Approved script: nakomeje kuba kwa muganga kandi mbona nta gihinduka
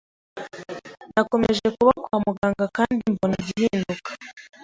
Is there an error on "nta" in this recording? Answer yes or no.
yes